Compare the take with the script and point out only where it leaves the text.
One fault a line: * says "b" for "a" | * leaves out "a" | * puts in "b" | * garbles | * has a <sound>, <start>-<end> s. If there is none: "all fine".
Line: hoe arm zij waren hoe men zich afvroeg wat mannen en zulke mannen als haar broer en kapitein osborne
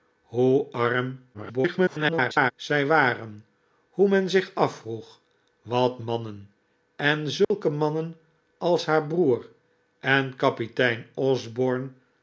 * garbles
* has a dropout, 7.4-7.5 s